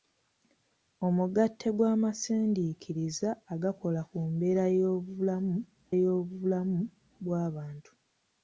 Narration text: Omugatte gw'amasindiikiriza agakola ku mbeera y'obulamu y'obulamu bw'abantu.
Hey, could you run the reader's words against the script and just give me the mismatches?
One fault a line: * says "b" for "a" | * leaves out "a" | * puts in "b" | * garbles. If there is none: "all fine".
all fine